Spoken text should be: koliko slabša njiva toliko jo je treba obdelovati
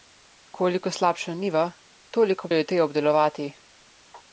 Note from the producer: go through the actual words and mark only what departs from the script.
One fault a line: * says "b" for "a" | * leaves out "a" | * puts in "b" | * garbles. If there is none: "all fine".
all fine